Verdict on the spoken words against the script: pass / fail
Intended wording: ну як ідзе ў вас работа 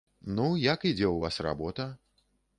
pass